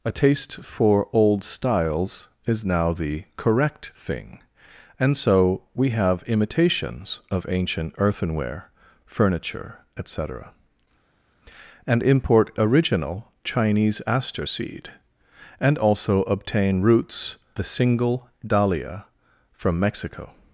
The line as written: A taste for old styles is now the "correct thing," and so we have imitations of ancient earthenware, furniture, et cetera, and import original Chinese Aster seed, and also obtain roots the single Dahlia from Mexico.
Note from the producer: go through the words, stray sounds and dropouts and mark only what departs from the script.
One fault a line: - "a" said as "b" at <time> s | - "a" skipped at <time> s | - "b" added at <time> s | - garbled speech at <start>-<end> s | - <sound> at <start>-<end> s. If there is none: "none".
none